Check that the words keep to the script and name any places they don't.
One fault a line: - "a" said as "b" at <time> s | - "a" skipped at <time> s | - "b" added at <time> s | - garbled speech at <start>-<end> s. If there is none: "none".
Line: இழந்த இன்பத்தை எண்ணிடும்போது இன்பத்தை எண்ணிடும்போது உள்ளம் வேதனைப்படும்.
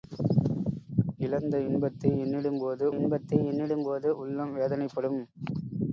none